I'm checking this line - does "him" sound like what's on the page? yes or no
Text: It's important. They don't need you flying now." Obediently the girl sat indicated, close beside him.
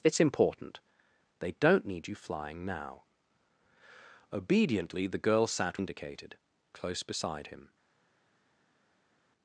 yes